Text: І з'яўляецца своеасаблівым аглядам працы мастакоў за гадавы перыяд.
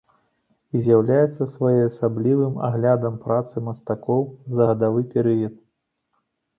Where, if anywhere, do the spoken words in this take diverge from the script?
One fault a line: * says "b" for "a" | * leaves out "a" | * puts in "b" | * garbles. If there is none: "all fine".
all fine